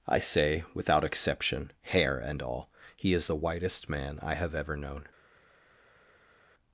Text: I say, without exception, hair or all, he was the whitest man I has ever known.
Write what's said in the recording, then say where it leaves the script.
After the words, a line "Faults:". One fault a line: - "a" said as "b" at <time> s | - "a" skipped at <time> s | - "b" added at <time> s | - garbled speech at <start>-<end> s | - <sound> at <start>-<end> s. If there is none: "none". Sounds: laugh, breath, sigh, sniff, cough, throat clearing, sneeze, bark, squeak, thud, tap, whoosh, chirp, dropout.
I say, without exception, hair and all, he is the whitest man I have ever known.
Faults:
- "or" said as "and" at 2.2 s
- "was" said as "is" at 3.1 s
- "has" said as "have" at 4.4 s